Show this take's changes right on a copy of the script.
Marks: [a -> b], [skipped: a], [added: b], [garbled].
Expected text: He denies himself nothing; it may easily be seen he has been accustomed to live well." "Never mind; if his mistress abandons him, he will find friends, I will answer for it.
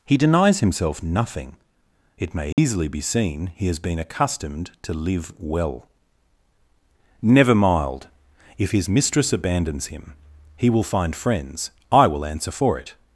He denies himself nothing; it may easily be seen he has been accustomed to live well." "Never [mind; -> mild] if his mistress abandons him, he will find friends, I will answer for it.